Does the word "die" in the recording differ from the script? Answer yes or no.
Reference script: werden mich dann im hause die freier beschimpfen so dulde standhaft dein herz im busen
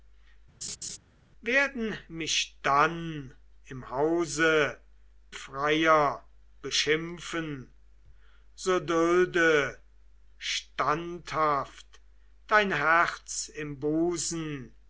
yes